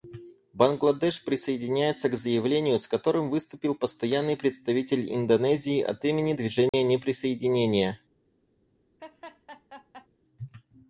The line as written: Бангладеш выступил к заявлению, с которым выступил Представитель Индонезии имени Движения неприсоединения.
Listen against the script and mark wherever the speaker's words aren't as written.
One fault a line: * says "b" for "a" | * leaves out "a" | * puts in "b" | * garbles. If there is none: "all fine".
* says "присоединяется" for "выступил"
* puts in "Постоянный"
* puts in "от"